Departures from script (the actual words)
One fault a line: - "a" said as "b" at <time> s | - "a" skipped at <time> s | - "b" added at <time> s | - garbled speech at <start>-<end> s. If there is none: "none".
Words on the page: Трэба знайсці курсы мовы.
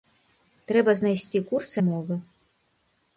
none